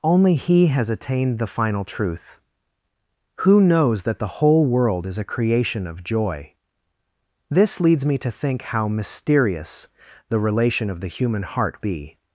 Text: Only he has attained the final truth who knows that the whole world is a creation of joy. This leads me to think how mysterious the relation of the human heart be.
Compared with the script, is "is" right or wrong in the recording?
right